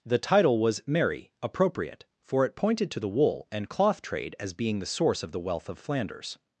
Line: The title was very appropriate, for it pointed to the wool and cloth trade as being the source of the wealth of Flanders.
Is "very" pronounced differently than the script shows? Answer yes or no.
yes